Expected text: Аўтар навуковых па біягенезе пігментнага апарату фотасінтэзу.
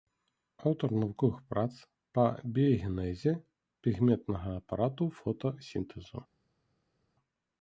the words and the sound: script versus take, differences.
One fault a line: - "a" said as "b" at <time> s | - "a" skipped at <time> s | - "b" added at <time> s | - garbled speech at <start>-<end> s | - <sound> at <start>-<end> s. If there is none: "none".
- "прац" added at 1.5 s